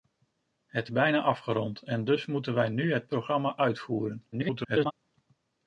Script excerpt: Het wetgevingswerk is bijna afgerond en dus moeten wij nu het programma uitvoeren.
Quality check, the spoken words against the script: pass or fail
fail